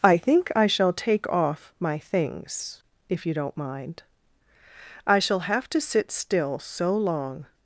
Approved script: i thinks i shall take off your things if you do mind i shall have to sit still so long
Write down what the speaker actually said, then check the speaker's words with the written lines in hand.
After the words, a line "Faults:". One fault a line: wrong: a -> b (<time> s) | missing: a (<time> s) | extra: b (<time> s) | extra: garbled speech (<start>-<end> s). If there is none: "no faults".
i think i shall take off my things if you don't mind i shall have to sit still so long
Faults:
wrong: thinks -> think (0.2 s)
wrong: your -> my (1.8 s)
wrong: do -> don't (3.3 s)